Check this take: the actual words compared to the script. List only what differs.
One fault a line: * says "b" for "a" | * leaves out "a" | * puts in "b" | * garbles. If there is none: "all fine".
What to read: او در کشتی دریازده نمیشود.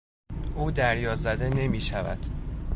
* leaves out "در کشتی"